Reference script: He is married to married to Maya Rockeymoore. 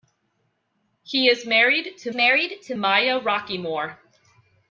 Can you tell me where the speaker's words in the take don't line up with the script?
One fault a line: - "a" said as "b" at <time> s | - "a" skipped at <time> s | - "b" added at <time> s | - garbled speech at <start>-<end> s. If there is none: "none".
none